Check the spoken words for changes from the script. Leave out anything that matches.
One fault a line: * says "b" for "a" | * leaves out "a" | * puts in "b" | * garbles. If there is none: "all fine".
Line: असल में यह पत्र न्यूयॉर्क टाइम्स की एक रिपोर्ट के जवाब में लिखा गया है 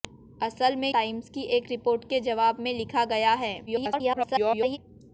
* leaves out "यह पत्र न्यूयॉर्क"
* garbles